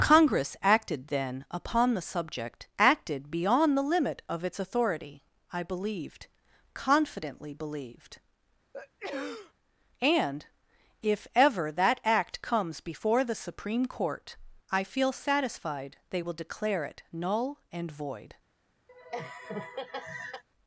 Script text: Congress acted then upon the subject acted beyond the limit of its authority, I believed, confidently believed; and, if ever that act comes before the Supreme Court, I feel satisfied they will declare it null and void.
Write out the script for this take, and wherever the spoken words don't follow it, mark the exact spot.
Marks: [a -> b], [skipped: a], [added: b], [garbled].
Congress acted then upon the subject acted beyond the limit of its authority, I believed, confidently believed; and, if ever that act comes before the Supreme Court, I feel satisfied they will declare it null and void.